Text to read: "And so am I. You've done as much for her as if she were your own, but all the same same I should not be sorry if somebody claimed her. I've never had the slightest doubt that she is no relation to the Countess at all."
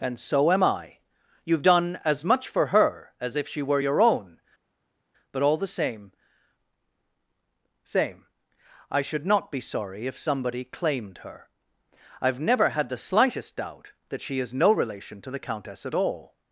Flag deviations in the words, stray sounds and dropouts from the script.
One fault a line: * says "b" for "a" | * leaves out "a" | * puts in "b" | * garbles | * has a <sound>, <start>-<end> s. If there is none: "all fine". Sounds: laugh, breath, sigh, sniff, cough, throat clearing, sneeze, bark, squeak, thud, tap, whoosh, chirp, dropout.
all fine